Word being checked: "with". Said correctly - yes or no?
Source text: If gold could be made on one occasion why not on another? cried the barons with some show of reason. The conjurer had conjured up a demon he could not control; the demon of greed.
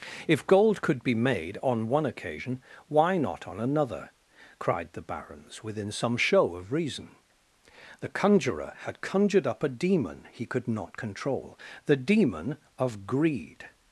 no